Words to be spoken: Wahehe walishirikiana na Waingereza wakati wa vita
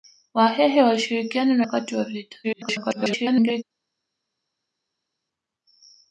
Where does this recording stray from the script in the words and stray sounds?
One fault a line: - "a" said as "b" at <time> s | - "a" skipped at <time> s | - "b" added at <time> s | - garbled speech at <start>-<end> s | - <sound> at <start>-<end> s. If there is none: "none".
- "Waingereza" skipped at 1.6 s
- garbled speech at 2.4-3.6 s